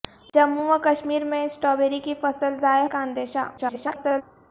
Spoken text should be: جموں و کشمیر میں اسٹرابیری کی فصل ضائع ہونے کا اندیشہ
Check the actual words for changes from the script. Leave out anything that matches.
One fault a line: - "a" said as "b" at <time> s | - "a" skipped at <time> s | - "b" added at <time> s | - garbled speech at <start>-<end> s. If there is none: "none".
- "ہونے" skipped at 2.9 s
- garbled speech at 3.6-4.2 s